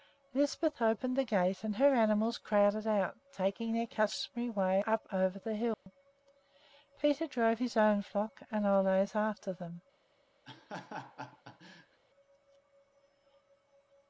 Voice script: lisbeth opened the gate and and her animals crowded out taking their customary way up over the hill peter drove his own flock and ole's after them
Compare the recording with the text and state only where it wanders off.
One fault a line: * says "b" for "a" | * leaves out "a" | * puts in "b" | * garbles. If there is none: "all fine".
* leaves out "and"